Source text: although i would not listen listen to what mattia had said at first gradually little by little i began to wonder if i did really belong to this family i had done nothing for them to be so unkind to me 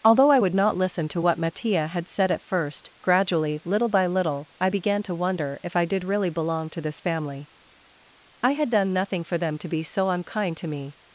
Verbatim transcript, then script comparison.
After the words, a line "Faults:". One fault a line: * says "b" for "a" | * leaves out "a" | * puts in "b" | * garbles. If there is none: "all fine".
although i would not listen to what mattia had said at first gradually little by little i began to wonder if i did really belong to this family i had done nothing for them to be so unkind to me
Faults:
* leaves out "listen"